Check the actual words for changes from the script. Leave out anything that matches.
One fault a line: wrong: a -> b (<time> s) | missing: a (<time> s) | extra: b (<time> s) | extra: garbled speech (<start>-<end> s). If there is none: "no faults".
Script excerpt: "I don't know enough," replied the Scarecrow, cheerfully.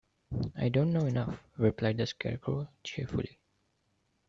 no faults